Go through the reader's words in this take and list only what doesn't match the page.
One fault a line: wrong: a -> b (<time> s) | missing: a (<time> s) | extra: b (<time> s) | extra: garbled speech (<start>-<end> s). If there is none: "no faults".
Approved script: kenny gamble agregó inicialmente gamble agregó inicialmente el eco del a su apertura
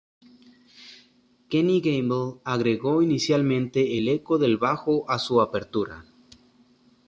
missing: gamble agregó inicialmente (4.0 s)
extra: bajo (4.6 s)